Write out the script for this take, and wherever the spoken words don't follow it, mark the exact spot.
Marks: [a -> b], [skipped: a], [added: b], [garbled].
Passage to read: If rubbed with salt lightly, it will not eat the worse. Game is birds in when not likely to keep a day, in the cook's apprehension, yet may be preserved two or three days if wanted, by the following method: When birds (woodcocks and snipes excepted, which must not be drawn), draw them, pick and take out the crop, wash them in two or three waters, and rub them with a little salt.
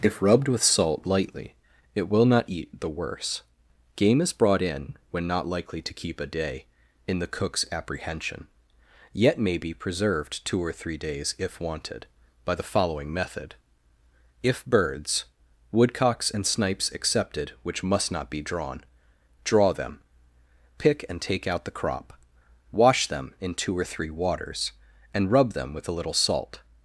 If rubbed with salt lightly, it will not eat the worse. Game is [birds -> brought] in when not likely to keep a day, in the cook's apprehension, yet may be preserved two or three days if wanted, by the following method: [When -> If] birds (woodcocks and snipes excepted, which must not be drawn), draw them, pick and take out the crop, wash them in two or three waters, and rub them with a little salt.